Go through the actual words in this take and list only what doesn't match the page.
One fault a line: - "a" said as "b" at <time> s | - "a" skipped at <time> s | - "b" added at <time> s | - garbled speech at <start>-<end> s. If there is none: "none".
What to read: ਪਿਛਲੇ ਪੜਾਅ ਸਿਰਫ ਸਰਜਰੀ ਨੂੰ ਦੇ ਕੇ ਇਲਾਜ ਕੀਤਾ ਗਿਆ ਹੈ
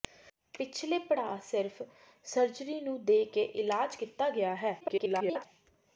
- garbled speech at 4.8-5.5 s